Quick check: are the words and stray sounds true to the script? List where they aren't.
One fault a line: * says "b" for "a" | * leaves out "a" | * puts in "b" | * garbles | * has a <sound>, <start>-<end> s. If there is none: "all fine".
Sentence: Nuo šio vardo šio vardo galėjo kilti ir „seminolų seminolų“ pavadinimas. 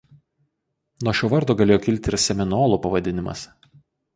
* leaves out "šio vardo"
* leaves out "seminolų"